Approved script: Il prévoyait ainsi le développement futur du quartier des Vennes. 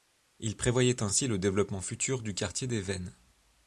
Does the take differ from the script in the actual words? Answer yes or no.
no